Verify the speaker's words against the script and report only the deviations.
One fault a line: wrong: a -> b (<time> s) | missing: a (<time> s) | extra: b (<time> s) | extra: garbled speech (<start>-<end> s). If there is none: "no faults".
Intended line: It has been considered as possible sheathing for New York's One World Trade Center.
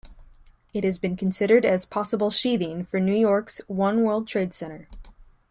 no faults